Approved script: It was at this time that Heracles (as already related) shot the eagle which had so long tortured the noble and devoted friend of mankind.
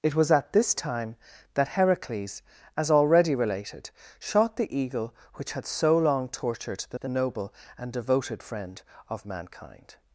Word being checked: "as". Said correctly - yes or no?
yes